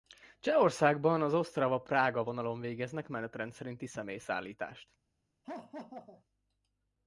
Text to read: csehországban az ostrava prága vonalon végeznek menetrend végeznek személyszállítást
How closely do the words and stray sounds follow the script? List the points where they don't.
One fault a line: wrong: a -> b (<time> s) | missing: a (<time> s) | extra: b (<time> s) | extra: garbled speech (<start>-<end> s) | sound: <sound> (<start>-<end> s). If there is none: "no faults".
wrong: végeznek -> szerinti (3.5 s)
sound: laugh (5.4-6.2 s)